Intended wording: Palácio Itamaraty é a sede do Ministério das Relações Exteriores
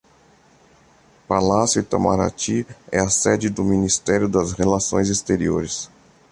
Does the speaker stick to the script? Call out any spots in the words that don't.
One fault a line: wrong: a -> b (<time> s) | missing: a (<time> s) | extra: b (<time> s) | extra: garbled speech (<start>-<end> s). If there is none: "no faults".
no faults